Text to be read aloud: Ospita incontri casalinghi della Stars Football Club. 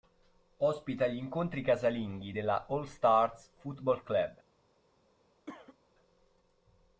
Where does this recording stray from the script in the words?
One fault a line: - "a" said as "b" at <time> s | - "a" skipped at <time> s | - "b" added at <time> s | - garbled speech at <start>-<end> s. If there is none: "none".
- "gli" added at 1.1 s
- "All" added at 2.7 s